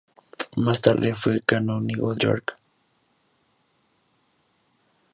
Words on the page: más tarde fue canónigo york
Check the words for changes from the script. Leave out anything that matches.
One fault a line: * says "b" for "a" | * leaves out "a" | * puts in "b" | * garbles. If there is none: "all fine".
all fine